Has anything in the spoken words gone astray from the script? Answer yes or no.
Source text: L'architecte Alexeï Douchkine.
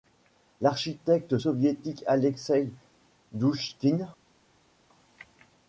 yes